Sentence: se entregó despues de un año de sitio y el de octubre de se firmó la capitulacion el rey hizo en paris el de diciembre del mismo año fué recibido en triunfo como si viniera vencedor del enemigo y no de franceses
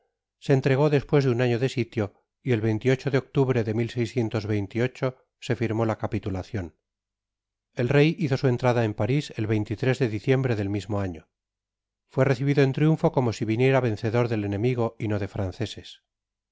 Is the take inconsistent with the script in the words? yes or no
yes